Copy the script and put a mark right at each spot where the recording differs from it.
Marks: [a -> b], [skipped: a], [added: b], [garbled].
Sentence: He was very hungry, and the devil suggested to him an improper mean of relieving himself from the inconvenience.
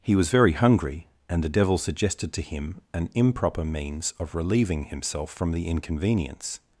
He was very hungry, and the devil suggested to him an improper [mean -> means] of relieving himself from the inconvenience.